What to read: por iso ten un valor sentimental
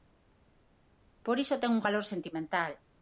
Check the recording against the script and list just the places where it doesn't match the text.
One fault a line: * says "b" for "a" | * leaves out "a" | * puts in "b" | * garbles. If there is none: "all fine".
all fine